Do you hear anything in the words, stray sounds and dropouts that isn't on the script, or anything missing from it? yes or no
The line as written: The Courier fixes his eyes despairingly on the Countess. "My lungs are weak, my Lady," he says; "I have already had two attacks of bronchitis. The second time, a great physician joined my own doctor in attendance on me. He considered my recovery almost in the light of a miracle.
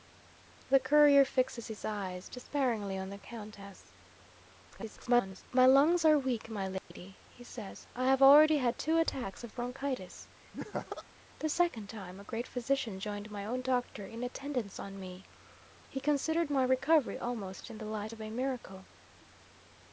yes